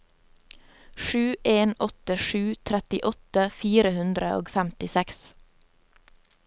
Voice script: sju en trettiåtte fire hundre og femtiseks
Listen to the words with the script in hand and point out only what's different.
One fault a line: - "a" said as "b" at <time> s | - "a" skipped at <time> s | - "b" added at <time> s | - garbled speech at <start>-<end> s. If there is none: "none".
- "åtte sju" added at 1.8 s